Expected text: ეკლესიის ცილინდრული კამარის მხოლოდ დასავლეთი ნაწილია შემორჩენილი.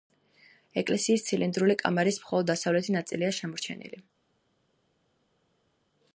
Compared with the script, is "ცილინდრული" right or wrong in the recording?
right